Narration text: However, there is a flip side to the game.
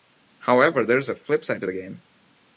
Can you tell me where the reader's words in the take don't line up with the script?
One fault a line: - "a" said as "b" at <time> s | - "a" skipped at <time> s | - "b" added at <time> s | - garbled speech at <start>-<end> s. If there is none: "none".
none